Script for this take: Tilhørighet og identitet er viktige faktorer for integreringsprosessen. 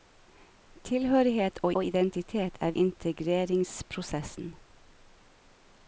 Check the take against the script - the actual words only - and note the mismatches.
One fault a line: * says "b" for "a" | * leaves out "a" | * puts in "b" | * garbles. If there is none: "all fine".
* puts in "og"
* leaves out "viktige faktorer for"